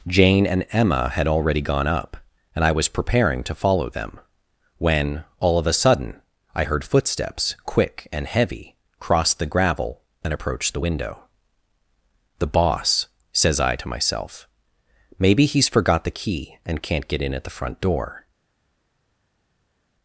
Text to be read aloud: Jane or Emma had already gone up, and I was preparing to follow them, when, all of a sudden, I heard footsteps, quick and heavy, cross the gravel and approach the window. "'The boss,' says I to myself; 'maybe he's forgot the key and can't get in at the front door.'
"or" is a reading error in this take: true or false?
true